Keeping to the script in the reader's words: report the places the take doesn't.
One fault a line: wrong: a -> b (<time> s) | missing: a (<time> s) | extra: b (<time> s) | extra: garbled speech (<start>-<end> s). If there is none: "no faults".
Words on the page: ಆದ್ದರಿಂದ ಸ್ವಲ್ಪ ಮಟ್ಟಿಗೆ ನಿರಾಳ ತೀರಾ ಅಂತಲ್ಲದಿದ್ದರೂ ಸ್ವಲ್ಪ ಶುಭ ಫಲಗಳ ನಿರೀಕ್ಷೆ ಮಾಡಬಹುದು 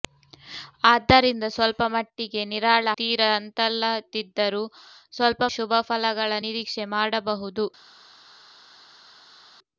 no faults